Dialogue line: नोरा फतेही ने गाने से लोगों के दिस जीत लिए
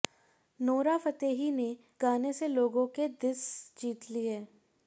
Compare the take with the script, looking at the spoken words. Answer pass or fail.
pass